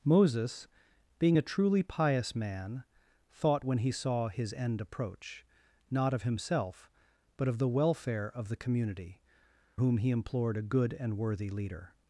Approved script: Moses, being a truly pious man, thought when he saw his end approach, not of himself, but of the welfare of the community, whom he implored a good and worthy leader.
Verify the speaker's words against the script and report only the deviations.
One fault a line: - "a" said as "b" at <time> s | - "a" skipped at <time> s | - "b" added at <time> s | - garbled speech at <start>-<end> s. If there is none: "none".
none